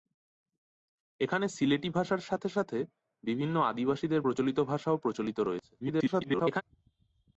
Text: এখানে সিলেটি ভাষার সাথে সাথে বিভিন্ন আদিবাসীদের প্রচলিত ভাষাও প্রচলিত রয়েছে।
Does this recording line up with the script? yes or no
no